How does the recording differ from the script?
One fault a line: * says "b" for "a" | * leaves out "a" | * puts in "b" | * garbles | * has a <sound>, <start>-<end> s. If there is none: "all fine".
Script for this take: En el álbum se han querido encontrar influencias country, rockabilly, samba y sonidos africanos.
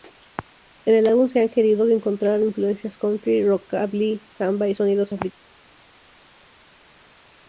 all fine